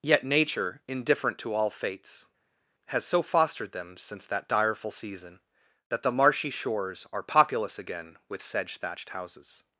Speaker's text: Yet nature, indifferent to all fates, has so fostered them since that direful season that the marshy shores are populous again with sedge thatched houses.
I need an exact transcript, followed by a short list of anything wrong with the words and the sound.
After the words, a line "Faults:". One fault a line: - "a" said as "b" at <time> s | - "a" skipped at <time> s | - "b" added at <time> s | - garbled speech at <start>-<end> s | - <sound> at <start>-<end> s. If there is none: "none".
Yet nature, indifferent to all fates, has so fostered them since that direful season that the marshy shores are populous again with sedge thatched houses.
Faults:
none